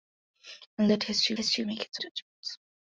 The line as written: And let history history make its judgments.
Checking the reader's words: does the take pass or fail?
pass